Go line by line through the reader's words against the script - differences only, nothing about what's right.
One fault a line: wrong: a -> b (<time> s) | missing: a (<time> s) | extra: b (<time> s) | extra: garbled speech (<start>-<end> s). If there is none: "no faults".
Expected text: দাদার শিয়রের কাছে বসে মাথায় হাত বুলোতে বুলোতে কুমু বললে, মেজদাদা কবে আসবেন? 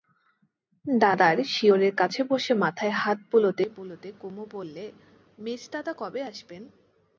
no faults